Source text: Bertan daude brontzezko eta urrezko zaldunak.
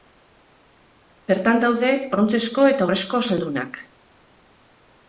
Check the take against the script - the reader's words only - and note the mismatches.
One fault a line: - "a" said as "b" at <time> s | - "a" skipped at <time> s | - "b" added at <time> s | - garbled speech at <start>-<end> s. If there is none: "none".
none